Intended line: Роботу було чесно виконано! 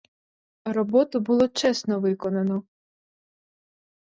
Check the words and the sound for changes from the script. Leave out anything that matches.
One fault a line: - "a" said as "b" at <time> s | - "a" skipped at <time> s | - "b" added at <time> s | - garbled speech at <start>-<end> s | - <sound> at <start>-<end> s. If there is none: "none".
none